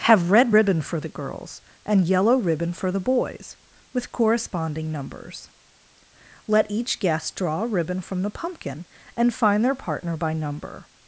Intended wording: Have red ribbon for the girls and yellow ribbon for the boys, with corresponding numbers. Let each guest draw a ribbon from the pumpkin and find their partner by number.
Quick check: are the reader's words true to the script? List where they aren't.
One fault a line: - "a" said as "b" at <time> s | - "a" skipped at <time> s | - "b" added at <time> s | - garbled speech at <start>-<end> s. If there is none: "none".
none